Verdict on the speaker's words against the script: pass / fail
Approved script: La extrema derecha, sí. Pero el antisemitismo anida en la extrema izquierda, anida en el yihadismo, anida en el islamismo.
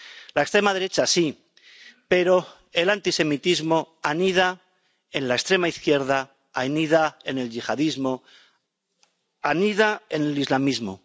pass